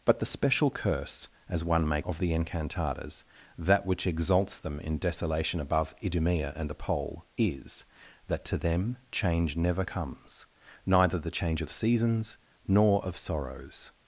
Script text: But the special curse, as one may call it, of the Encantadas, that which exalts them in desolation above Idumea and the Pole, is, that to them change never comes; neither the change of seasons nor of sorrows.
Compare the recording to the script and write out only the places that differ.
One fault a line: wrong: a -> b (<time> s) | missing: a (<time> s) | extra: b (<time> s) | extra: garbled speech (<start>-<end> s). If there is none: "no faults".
missing: call it (2.0 s)